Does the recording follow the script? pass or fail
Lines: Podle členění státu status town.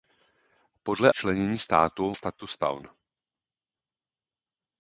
pass